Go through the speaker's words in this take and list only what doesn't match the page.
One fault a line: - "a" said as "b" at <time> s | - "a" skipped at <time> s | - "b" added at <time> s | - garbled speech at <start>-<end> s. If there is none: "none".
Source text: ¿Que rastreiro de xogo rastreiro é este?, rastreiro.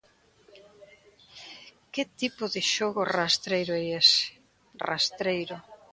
- "rastreiro" said as "tipo" at 2.2 s
- "este" said as "ese" at 4.0 s